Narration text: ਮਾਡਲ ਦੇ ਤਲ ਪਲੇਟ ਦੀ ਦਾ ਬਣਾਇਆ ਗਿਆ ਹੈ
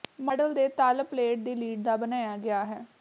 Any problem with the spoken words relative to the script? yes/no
yes